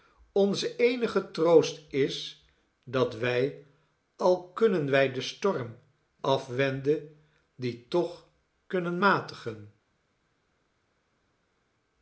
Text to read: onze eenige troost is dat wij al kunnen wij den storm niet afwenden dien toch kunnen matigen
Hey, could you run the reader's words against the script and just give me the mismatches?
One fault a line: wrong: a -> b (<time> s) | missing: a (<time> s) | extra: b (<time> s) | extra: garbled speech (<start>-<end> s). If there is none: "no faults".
missing: niet (5.8 s)